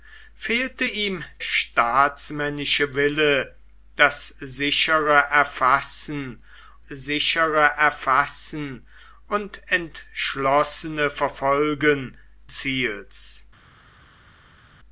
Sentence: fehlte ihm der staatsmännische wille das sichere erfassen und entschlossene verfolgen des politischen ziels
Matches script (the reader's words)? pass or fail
fail